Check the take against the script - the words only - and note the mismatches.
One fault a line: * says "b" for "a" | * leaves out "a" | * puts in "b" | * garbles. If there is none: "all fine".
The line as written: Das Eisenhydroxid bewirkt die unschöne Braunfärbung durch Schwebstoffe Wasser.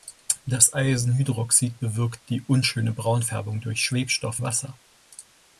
all fine